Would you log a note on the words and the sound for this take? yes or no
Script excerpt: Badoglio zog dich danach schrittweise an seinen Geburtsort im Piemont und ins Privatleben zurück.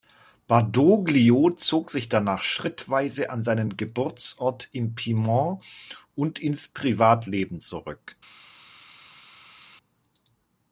yes